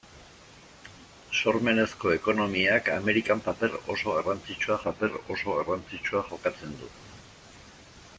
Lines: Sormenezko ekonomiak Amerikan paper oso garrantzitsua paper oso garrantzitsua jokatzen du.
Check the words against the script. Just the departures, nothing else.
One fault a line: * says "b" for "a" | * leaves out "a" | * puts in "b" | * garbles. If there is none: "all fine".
all fine